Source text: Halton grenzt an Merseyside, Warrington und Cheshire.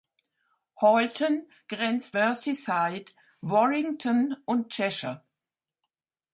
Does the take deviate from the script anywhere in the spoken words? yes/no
yes